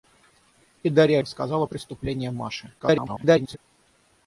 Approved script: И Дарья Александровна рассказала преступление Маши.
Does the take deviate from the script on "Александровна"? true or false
true